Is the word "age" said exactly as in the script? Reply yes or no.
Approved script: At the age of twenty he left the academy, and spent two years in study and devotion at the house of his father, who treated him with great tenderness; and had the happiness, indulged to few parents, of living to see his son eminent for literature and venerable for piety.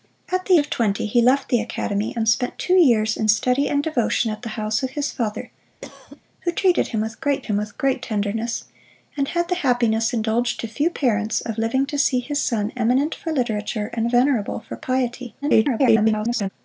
no